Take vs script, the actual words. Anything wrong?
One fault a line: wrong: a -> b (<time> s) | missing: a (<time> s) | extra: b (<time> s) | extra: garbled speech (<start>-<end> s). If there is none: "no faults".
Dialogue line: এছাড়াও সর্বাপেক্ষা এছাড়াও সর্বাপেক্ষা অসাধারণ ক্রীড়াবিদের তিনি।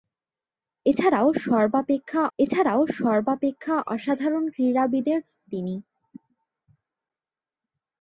no faults